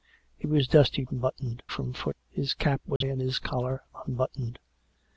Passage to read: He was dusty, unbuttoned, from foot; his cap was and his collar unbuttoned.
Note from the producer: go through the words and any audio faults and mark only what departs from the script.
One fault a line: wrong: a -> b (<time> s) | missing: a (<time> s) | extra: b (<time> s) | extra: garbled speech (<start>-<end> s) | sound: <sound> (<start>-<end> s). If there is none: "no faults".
sound: dropout (3.0-3.0 s)